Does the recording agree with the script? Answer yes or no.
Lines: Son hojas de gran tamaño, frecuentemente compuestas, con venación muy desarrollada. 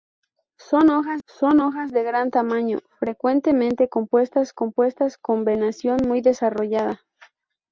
no